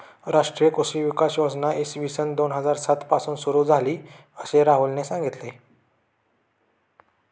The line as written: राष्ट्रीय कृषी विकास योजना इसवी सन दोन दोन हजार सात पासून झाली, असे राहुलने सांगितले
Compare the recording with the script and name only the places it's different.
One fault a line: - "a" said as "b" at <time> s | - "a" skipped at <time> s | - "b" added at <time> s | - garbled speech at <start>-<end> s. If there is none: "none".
- "दोन" skipped at 2.5 s
- "सुरू" added at 3.4 s